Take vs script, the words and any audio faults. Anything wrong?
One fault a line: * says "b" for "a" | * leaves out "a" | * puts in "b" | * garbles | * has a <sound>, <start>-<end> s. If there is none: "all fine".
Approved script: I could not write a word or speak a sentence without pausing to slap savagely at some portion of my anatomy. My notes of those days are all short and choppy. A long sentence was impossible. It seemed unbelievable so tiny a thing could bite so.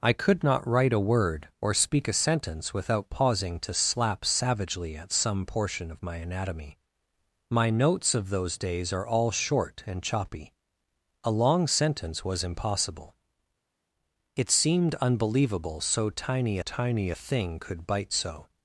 * puts in "tiny"